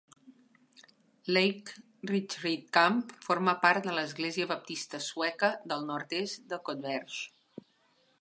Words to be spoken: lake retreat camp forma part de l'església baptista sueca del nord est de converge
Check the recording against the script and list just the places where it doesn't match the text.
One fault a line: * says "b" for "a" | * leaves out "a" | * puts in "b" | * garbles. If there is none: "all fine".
all fine